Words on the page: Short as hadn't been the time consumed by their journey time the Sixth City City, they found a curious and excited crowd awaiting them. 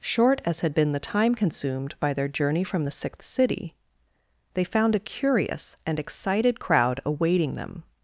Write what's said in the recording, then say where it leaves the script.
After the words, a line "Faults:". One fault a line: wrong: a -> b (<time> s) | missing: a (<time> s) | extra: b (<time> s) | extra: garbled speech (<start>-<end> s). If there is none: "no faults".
Short as had been the time consumed by their journey from the Sixth City, they found a curious and excited crowd awaiting them.
Faults:
wrong: hadn't -> had (0.6 s)
wrong: time -> from (2.6 s)
missing: City (3.7 s)